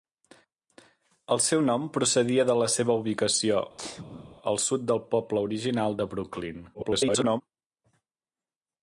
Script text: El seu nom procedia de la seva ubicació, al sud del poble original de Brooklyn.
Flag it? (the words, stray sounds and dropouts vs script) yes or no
yes